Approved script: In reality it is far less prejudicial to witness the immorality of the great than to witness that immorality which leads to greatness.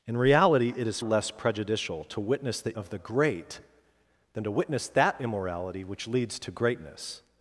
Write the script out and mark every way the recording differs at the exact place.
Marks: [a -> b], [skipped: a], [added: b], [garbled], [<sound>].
In reality it is [skipped: far] less prejudicial to witness the [skipped: immorality] of the great than to witness that immorality which leads to greatness.